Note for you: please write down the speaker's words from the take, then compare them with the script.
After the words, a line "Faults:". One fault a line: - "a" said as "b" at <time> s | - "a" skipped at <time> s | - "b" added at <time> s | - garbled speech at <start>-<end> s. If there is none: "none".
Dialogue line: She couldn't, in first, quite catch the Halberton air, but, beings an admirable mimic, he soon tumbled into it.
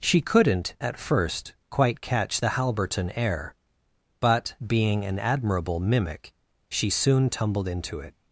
She couldn't, at first, quite catch the Halberton air, but, being an admirable mimic, she soon tumbled into it.
Faults:
- "in" said as "at" at 0.8 s
- "beings" said as "being" at 4.6 s
- "he" said as "she" at 6.7 s